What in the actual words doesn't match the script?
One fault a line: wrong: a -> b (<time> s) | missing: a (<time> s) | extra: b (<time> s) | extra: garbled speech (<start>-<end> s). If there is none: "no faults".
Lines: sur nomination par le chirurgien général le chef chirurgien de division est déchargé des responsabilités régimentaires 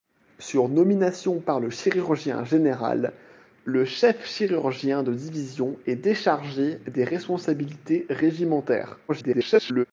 extra: garbled speech (9.1-9.8 s)